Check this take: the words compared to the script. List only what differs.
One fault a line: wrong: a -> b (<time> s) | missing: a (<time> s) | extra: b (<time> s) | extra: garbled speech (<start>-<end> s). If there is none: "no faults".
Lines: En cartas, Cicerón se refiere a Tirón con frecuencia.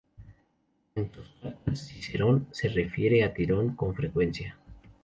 extra: sus (1.1 s)